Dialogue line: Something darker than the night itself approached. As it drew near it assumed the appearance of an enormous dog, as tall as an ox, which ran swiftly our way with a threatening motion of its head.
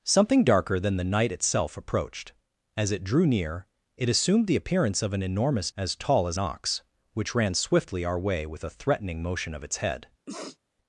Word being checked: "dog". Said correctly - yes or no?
no